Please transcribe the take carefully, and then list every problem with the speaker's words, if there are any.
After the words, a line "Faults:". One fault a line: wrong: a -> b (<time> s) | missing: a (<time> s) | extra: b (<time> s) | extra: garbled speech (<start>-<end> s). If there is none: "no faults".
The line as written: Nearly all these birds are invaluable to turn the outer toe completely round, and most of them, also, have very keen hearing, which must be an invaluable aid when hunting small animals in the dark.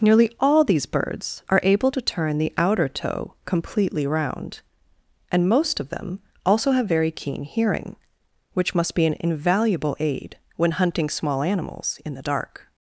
Nearly all these birds are able to turn the outer toe completely round, and most of them, also, have very keen hearing, which must be an invaluable aid when hunting small animals in the dark.
Faults:
wrong: invaluable -> able (1.6 s)